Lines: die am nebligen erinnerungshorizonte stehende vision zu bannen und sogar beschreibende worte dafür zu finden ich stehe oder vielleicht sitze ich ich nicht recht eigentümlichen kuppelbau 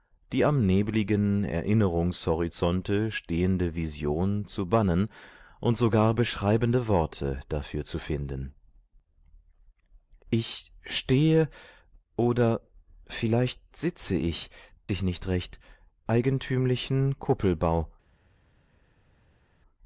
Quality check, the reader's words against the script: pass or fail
pass